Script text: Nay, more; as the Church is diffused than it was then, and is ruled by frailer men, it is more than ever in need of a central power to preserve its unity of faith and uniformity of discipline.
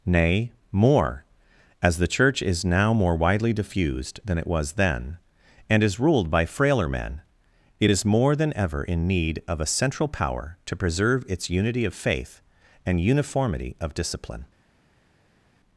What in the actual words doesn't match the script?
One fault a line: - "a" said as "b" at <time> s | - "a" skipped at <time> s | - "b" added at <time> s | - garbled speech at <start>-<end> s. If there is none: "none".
- "now more widely" added at 2.6 s